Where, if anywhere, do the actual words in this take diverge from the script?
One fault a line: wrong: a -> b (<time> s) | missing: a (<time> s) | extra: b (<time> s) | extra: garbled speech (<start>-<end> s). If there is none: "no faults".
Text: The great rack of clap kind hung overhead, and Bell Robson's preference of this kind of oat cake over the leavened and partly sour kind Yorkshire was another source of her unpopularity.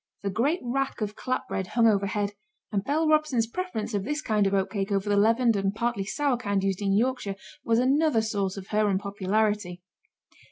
wrong: kind -> bread (1.5 s)
extra: used in (6.6 s)